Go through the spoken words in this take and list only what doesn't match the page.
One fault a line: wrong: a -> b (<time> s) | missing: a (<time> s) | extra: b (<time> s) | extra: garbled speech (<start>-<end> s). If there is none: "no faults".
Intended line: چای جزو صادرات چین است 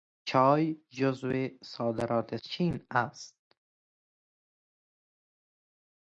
no faults